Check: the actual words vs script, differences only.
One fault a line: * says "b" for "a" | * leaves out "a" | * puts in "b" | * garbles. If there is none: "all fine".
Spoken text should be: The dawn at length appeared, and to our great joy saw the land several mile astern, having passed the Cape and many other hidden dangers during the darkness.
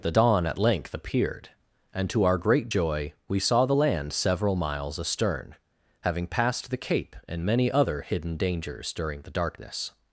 * puts in "we"
* says "miles" for "mile"